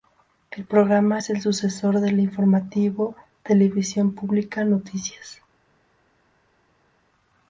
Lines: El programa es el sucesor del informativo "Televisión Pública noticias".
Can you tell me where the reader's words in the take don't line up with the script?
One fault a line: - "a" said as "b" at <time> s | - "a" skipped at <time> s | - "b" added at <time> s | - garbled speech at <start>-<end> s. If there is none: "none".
none